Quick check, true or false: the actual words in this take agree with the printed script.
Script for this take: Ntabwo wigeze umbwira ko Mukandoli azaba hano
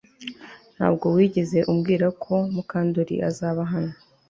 true